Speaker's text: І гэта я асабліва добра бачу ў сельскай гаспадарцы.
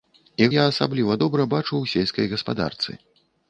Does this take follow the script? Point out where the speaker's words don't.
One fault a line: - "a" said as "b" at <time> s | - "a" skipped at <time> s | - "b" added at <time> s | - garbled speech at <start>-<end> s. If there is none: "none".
- "гэта" skipped at 0.5 s